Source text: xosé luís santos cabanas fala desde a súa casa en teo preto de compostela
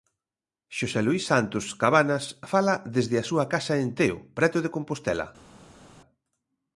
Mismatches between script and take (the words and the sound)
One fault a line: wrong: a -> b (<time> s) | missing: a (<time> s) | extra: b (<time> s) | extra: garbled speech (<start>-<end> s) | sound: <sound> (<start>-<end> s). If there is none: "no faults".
no faults